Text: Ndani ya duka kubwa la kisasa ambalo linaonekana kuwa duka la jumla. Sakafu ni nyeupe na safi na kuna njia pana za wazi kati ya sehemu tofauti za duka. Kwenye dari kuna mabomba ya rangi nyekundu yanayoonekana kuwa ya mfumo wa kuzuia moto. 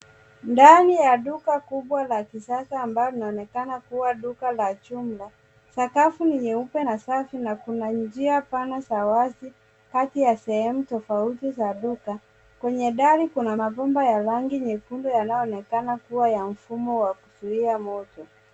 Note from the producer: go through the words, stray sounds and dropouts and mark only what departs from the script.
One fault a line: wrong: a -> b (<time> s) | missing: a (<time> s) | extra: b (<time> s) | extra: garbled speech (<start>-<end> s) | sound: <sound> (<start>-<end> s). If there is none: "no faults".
no faults